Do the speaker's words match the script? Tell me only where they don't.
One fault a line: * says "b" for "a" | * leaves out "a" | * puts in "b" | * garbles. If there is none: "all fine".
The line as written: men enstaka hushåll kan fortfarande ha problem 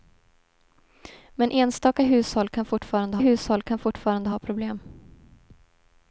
* puts in "hushåll kan fortfarande"